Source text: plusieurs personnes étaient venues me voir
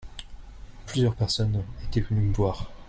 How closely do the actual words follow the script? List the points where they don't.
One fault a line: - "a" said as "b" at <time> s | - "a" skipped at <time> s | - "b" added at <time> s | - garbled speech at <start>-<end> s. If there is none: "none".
none